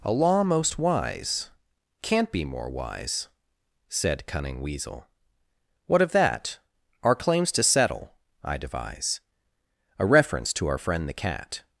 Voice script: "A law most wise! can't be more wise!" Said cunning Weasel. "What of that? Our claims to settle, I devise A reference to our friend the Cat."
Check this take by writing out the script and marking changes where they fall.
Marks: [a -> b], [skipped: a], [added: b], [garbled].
"A law most wise! can't be more wise!" Said cunning Weasel. "What of that? Our claims to settle, I devise A reference to our friend the Cat."